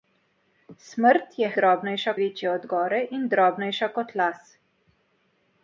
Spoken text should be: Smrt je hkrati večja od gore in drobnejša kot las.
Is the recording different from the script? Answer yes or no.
yes